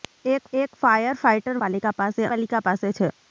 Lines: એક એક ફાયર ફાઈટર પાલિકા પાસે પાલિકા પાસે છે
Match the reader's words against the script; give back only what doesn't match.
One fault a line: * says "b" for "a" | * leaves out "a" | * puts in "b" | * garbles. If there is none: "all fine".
all fine